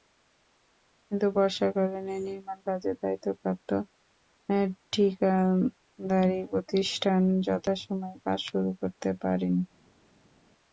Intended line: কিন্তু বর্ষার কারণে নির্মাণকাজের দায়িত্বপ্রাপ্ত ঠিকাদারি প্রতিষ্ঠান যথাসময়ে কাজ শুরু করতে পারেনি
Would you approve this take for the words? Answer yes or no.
yes